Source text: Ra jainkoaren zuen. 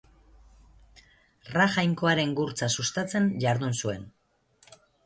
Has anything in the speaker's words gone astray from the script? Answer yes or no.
yes